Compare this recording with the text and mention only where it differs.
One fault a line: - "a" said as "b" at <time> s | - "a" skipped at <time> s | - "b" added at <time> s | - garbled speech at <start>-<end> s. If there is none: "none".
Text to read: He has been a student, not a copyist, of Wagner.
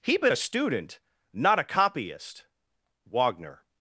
- "has" skipped at 0.2 s
- "of" skipped at 2.4 s